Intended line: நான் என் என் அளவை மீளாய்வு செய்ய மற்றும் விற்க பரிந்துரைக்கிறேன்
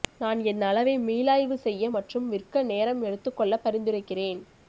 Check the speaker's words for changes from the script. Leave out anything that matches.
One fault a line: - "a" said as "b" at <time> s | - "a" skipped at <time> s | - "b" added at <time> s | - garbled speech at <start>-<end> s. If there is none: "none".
- "என்" skipped at 0.6 s
- "நேரம் எடுத்துக்கொள்ள" added at 2.7 s